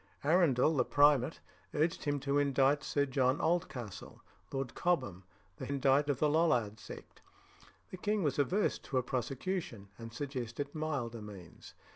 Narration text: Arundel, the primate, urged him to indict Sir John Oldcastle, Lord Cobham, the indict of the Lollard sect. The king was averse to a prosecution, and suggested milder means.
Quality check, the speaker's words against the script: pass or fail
pass